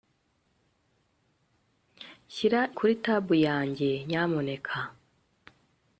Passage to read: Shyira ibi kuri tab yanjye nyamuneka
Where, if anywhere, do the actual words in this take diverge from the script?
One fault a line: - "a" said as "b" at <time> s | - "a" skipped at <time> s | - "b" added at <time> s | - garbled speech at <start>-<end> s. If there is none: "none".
- "ibi" skipped at 2.6 s